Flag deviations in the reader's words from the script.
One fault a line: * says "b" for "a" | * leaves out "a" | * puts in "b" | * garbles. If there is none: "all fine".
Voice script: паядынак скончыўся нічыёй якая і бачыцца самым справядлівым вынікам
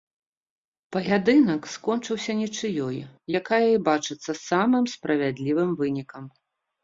all fine